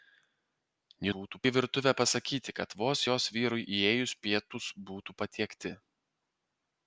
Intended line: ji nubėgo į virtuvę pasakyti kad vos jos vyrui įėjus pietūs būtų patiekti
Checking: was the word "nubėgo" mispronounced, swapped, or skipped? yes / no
yes